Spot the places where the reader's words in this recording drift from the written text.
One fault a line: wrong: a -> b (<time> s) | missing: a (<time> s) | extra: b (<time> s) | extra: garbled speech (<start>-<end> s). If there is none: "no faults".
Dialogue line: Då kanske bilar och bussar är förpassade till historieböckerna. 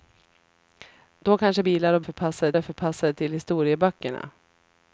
wrong: bussar -> förpassade (2.0 s)